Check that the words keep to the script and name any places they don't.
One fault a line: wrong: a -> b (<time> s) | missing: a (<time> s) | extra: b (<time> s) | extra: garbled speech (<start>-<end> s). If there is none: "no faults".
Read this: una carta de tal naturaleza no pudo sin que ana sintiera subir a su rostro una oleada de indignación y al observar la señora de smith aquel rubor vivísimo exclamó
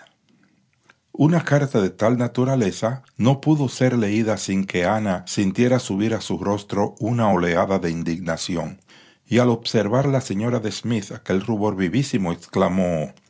extra: ser leída (3.7 s)